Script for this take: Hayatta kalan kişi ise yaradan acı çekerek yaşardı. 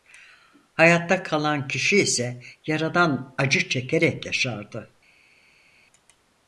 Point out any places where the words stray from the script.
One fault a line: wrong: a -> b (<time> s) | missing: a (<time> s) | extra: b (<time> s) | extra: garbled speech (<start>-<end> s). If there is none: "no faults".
no faults